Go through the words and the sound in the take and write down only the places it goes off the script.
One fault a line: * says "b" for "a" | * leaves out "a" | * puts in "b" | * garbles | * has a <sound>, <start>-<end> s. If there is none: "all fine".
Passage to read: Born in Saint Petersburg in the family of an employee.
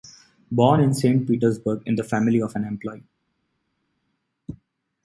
all fine